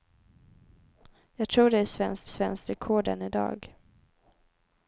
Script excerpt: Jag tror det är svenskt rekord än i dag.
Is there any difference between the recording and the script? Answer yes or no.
yes